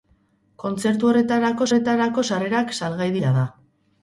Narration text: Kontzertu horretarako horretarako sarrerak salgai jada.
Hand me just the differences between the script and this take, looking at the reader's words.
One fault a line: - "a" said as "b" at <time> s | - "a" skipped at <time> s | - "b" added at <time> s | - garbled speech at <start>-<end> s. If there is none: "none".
none